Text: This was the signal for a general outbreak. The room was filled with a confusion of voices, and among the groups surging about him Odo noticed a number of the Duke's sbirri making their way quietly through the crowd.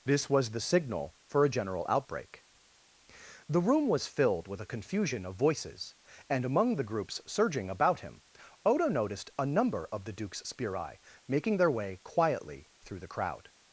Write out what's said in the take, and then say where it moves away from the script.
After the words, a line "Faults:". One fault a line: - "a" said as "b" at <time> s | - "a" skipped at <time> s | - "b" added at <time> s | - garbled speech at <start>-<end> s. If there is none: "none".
This was the signal for a general outbreak. The room was filled with a confusion of voices, and among the groups surging about him Odo noticed a number of the Duke's sbirri making their way quietly through the crowd.
Faults:
none